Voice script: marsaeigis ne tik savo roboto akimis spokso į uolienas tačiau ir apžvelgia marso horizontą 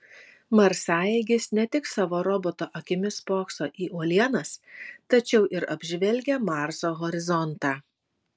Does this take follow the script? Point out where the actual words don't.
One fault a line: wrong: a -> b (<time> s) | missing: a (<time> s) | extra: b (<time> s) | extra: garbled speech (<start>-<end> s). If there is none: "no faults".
no faults